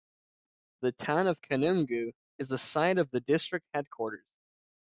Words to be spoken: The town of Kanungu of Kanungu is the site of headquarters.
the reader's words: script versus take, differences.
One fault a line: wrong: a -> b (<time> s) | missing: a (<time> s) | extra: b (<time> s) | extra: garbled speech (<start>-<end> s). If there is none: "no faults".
missing: of Kanungu (2.1 s)
extra: the district (3.1 s)